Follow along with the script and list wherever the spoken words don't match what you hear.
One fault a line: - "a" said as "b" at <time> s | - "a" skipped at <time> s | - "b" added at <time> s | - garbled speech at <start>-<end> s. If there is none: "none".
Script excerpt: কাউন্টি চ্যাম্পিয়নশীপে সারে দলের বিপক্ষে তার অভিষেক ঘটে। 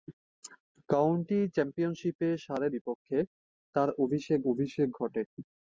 - "দলের" skipped at 2.7 s
- "অভিষেক" added at 4.5 s